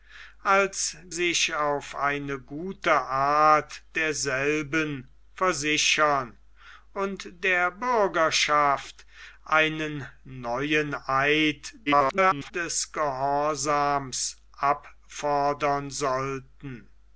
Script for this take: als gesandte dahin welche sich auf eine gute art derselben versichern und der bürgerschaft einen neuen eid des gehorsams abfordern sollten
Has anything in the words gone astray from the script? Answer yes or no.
yes